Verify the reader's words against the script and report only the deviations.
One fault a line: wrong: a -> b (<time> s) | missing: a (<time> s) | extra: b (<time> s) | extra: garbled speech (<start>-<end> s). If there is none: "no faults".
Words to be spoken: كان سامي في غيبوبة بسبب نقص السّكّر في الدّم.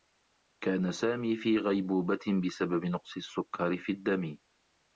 no faults